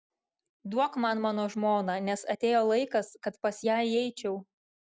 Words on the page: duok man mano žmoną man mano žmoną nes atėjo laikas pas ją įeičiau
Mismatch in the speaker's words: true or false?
true